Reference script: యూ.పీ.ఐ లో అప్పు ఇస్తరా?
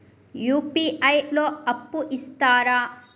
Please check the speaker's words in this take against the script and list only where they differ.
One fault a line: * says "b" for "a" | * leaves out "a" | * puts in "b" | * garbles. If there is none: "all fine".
all fine